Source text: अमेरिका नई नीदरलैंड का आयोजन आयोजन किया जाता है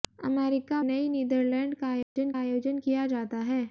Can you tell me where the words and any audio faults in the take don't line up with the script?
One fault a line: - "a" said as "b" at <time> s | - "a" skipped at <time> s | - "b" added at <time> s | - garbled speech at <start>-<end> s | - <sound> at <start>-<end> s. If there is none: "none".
- dropout at 2.0-2.2 s